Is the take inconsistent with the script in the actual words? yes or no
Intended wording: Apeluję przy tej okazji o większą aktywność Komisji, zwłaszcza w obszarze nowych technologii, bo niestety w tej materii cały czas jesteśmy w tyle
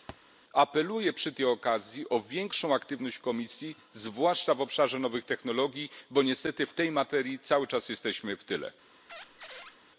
no